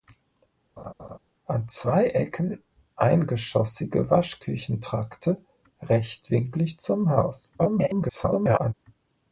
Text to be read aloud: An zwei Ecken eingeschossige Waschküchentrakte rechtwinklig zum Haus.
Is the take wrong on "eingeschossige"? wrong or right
right